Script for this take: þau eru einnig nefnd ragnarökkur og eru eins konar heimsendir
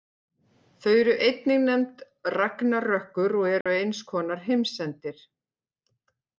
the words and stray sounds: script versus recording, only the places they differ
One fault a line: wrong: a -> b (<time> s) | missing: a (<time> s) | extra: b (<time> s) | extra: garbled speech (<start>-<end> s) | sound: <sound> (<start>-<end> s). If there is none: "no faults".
sound: dropout (3.6-3.7 s)